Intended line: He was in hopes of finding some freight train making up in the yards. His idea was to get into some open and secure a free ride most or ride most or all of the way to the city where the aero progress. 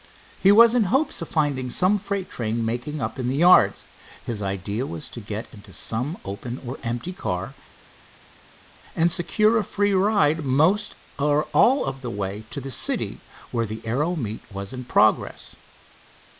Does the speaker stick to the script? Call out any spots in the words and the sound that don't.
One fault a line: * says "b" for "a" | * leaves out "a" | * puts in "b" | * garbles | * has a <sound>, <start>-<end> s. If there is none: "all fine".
* puts in "or empty car"
* leaves out "ride most or"
* puts in "meet was in"